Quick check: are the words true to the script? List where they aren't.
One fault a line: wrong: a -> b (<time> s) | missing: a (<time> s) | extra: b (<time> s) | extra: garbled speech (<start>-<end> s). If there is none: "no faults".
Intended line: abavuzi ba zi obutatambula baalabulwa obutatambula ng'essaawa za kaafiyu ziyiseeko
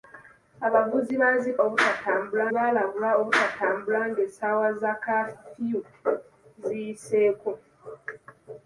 no faults